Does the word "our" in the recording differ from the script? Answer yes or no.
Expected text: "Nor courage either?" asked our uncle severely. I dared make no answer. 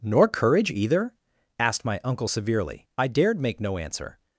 yes